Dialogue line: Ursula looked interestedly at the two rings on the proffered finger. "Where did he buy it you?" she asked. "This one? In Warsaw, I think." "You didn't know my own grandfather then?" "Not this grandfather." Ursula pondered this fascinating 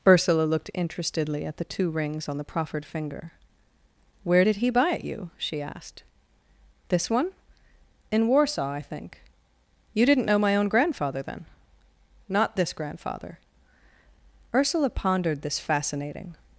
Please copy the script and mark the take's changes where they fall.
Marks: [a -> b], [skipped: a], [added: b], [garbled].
Ursula looked interestedly at the two rings on the proffered finger. "Where did he buy it you?" she asked. "This one? In Warsaw, I think." "You didn't know my own grandfather then?" "Not this grandfather." Ursula pondered this fascinating